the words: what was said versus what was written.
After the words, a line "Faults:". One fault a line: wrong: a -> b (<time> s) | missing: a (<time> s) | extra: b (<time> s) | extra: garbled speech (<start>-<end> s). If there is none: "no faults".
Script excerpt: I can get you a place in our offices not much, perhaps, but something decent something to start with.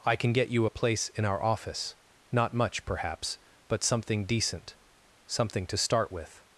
I can get you a place in our office not much, perhaps, but something decent something to start with.
Faults:
wrong: offices -> office (1.4 s)